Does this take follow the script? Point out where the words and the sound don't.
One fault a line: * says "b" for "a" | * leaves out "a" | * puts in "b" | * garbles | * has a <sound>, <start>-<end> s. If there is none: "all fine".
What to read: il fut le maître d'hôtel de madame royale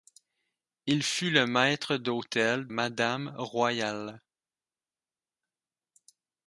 * leaves out "de"